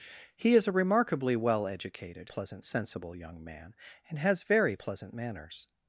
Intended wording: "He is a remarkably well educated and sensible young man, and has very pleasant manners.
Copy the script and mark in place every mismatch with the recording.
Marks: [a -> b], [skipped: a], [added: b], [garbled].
"He is a remarkably well educated [and -> pleasant] sensible young man, and has very pleasant manners.